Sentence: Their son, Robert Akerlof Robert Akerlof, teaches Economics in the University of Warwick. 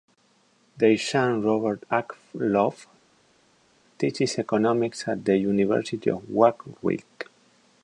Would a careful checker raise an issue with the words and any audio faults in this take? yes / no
yes